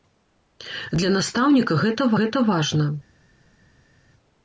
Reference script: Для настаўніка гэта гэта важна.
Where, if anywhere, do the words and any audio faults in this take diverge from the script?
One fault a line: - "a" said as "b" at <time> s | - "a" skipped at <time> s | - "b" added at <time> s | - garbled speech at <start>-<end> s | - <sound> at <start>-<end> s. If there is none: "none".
none